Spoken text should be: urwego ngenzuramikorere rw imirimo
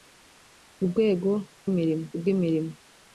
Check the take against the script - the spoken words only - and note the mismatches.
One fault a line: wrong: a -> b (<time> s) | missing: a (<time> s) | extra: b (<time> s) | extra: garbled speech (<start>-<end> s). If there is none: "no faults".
wrong: ngenzuramikorere -> imirimo (1.7 s)